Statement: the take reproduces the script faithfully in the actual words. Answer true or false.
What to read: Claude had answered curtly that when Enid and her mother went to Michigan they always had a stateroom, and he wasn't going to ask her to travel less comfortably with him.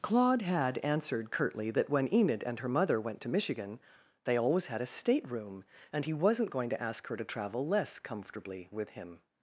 true